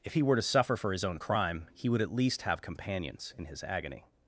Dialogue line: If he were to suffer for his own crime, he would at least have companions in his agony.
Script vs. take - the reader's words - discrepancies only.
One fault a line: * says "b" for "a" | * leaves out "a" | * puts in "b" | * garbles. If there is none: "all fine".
all fine